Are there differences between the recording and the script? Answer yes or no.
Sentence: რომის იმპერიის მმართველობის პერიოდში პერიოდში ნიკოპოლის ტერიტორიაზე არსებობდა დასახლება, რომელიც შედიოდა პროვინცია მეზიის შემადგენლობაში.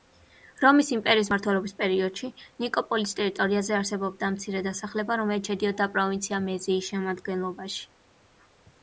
yes